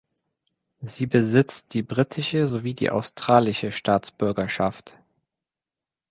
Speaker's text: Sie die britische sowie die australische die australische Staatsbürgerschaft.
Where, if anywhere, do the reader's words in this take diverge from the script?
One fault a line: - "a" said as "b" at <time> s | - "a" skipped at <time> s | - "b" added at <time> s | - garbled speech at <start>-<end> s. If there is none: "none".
- "besitzt" added at 1.0 s
- "die australische" skipped at 3.7 s